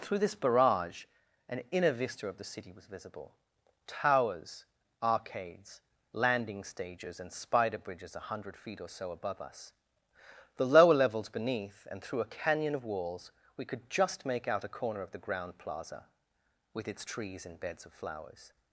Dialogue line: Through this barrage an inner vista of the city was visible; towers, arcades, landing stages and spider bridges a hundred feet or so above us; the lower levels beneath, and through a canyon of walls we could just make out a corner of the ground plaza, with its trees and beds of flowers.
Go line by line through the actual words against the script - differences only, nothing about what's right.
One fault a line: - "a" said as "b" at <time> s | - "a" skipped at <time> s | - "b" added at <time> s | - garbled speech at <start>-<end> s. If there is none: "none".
none